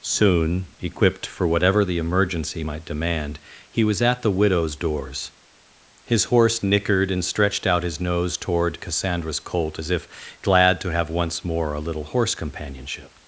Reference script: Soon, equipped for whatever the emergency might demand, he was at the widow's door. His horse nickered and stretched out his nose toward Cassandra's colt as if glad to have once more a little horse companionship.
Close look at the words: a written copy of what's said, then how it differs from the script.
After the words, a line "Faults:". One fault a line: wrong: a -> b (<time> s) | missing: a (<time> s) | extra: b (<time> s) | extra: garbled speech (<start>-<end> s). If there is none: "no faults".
Soon, equipped for whatever the emergency might demand, he was at the widow's doors. His horse nickered and stretched out his nose toward Cassandra's colt as if glad to have once more a little horse companionship.
Faults:
wrong: door -> doors (4.8 s)